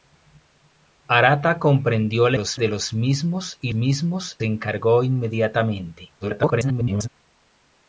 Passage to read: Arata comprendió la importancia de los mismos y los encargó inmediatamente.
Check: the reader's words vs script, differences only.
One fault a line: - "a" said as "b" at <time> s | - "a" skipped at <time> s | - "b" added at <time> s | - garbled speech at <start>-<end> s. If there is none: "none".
- "importancia" said as "los" at 2.3 s
- "los" said as "mismos" at 3.7 s
- garbled speech at 6.2-7.1 s